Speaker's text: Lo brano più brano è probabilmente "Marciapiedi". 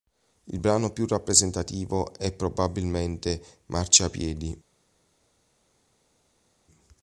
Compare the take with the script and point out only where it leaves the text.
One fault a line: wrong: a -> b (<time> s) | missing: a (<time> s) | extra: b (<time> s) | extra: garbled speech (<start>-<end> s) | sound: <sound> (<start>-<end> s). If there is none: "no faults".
wrong: Lo -> Il (0.5 s)
wrong: brano -> rappresentativo (1.1 s)